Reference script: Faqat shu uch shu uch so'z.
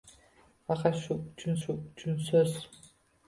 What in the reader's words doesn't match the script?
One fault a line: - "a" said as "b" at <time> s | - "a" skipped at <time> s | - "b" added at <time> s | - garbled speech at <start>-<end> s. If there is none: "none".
none